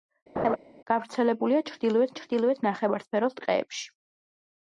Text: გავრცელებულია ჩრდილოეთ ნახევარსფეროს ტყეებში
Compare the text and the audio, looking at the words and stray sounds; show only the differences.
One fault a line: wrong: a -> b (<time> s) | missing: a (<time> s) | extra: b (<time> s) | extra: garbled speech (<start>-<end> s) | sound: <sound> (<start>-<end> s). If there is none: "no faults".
sound: laugh (0.4-0.6 s)
extra: ჩრდილოეთ (2.2 s)